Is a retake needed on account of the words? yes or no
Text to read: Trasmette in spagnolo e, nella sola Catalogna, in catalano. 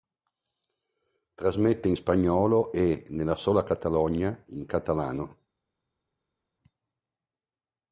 no